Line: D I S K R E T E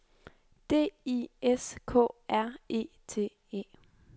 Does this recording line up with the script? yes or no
yes